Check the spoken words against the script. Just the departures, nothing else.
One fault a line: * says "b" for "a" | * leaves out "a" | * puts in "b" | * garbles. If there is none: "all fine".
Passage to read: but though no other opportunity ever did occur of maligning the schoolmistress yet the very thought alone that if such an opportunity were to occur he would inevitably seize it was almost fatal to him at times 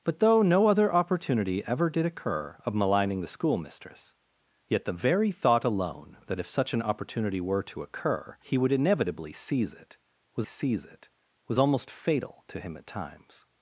* puts in "seize it was"